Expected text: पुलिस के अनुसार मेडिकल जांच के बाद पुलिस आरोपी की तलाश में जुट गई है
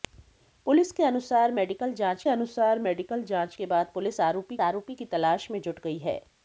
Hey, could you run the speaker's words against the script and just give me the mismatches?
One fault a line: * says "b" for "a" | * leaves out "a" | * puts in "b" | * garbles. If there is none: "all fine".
* puts in "अनुसार मेडिकल जांच"
* puts in "आरोपी"